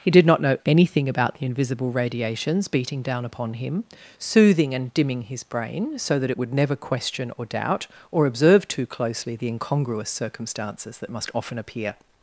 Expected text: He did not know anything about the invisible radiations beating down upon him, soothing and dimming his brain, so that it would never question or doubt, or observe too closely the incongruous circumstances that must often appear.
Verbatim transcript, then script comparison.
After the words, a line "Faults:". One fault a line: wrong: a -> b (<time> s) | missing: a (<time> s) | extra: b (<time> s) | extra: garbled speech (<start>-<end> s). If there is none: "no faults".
He did not know anything about the invisible radiations beating down upon him, soothing and dimming his brain, so that it would never question or doubt, or observe too closely the incongruous circumstances that must often appear.
Faults:
no faults